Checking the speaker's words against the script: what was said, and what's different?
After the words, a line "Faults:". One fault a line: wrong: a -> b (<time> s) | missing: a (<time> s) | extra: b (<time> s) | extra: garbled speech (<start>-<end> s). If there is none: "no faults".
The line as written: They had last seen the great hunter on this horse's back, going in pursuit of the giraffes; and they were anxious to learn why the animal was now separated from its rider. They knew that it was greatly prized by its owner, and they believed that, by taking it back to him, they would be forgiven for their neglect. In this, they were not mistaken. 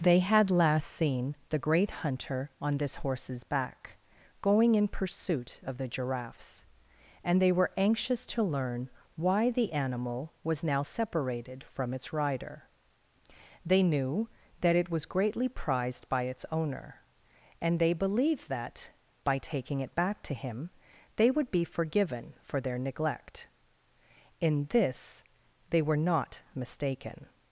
They had last seen the great hunter on this horse's back, going in pursuit of the giraffes; and they were anxious to learn why the animal was now separated from its rider. They knew that it was greatly prized by its owner, and they believed that, by taking it back to him, they would be forgiven for their neglect. In this, they were not mistaken.
Faults:
no faults